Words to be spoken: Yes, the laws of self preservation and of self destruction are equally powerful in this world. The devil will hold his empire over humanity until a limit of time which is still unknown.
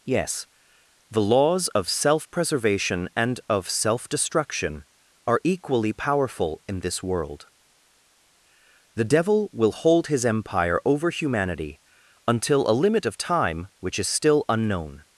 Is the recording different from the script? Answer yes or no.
no